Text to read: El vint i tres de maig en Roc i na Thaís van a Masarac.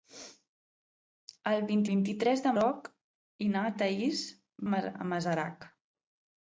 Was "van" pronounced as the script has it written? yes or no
no